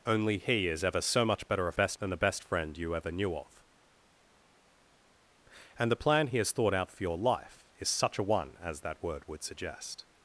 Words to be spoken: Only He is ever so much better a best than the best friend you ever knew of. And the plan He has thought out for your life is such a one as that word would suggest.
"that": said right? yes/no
yes